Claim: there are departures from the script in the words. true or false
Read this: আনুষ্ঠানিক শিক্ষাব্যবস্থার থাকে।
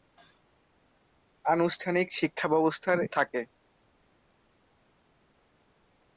false